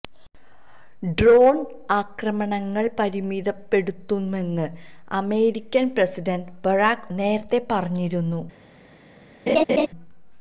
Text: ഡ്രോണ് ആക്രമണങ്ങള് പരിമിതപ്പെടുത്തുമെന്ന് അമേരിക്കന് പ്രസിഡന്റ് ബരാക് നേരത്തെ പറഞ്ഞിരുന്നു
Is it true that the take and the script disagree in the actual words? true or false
false